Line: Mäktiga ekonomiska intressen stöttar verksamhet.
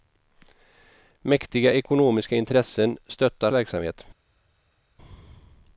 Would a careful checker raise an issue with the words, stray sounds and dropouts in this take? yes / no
no